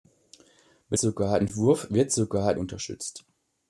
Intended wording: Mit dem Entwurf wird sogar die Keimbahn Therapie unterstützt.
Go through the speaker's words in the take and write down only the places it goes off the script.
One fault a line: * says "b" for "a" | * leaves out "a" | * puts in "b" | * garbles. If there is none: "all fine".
* says "sogar" for "dem"
* leaves out "die Keimbahn Therapie"